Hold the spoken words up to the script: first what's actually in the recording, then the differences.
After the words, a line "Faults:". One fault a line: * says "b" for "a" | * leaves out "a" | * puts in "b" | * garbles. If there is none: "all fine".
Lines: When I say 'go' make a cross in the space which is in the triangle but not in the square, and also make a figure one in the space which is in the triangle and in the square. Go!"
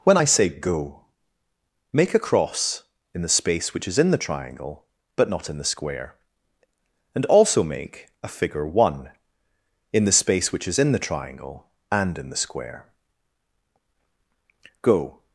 When I say 'go' make a cross in the space which is in the triangle but not in the square, and also make a figure one in the space which is in the triangle and in the square. Go!"
Faults:
all fine